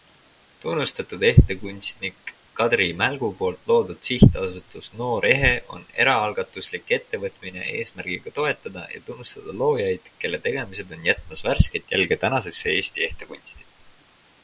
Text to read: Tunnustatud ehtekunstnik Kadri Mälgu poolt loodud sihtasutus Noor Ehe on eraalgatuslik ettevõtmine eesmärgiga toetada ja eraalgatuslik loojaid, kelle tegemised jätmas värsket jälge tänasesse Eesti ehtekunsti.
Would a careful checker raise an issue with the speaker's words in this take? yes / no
yes